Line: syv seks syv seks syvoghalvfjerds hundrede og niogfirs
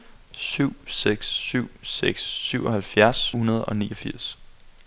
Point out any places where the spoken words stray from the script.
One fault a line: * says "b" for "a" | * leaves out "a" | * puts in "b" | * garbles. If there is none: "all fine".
all fine